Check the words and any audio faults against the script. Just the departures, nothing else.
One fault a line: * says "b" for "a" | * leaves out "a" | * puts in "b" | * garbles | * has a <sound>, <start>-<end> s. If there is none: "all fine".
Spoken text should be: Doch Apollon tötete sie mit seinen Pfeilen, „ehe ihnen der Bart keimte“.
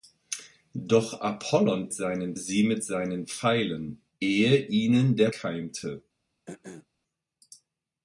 * says "seinen" for "tötete"
* leaves out "Bart"
* has a throat clearing, 6.5-6.9 s